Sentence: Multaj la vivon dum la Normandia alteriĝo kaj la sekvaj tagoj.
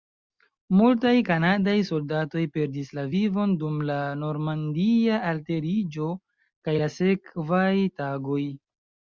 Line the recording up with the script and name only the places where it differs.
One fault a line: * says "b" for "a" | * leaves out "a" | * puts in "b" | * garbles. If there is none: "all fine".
* puts in "kanadaj soldatoj perdis"